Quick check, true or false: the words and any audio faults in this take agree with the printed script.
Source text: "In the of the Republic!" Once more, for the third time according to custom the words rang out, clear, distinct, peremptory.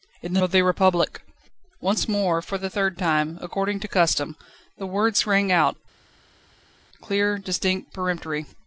true